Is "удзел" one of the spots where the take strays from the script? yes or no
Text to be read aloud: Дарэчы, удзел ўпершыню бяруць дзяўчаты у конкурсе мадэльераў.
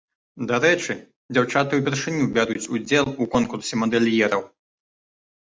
yes